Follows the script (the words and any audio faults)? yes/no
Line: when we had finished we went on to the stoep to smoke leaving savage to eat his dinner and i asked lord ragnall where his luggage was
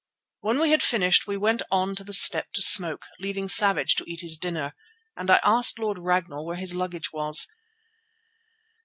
yes